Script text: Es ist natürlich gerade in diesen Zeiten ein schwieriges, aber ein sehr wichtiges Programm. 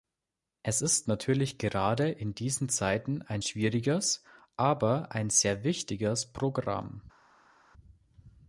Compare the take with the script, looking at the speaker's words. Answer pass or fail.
pass